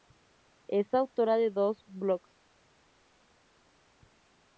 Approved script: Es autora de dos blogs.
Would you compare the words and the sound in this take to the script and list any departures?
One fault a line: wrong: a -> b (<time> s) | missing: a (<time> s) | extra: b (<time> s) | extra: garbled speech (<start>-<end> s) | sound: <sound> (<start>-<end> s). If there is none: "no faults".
no faults